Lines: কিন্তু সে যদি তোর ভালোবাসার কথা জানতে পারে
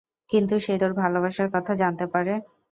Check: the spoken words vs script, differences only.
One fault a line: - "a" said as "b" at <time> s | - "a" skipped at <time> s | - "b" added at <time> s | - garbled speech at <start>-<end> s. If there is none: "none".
- "যদি" skipped at 0.8 s